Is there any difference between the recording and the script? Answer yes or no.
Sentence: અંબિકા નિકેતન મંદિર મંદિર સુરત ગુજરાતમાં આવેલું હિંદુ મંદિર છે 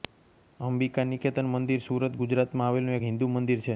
yes